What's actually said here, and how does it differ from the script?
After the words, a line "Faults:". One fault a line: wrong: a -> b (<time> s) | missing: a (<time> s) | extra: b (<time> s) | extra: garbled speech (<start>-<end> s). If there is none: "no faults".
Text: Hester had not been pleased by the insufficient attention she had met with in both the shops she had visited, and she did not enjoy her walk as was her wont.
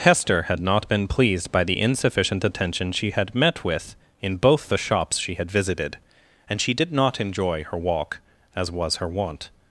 Hester had not been pleased by the insufficient attention she had met with in both the shops she had visited, and she did not enjoy her walk as was her wont.
Faults:
no faults